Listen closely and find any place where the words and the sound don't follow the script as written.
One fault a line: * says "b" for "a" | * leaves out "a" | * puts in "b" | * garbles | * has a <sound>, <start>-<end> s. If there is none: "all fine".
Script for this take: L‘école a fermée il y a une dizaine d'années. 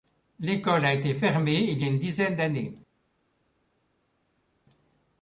* puts in "été"